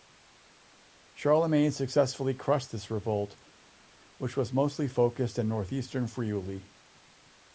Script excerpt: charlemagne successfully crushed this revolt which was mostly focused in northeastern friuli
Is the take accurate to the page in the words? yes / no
yes